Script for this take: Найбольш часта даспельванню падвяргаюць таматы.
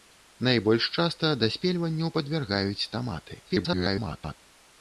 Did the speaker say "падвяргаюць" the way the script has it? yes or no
yes